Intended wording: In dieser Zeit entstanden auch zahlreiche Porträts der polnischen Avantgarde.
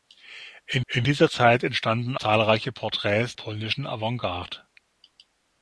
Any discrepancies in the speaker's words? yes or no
yes